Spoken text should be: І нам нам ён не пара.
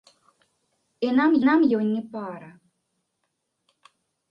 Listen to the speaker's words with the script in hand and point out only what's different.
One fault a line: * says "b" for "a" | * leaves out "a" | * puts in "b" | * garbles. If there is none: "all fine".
all fine